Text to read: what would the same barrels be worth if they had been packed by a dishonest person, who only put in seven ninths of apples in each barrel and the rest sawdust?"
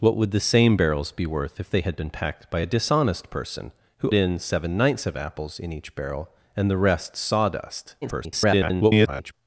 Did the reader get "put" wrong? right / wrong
wrong